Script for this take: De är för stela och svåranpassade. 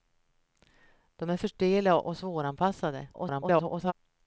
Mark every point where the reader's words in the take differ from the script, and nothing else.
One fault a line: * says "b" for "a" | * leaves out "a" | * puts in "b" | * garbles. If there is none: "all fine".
* garbles